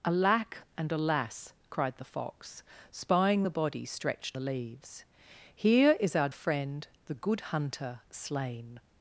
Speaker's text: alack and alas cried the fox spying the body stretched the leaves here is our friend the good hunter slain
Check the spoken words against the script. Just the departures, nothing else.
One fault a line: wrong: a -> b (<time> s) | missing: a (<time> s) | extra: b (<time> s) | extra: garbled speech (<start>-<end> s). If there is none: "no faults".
no faults